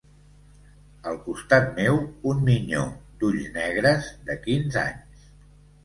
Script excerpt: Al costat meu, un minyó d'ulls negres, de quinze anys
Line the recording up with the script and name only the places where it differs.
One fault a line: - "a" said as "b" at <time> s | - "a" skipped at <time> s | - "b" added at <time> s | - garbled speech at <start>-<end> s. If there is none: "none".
none